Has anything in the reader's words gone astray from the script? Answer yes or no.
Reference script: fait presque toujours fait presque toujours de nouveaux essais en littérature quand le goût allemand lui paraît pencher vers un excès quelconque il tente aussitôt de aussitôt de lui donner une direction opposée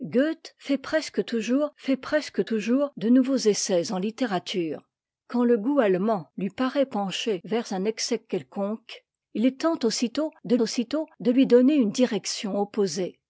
no